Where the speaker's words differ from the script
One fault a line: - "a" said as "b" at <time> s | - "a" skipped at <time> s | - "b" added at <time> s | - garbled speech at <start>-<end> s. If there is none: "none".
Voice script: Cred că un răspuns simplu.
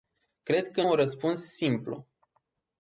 none